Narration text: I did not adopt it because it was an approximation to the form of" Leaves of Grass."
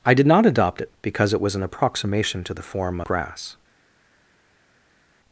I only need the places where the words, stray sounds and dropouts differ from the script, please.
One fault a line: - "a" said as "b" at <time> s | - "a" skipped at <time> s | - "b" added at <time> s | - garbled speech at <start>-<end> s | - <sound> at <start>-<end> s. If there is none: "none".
- "of Leaves of" skipped at 3.0 s